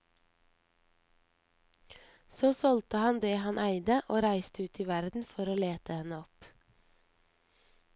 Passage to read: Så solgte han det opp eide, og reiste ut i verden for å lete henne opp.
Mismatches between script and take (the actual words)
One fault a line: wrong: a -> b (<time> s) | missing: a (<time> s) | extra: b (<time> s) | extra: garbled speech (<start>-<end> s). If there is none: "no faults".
wrong: opp -> han (3.4 s)